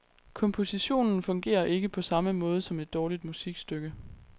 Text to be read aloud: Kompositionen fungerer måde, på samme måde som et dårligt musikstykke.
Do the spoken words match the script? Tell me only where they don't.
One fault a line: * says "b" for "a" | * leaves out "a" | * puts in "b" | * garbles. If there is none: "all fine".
* says "ikke" for "måde"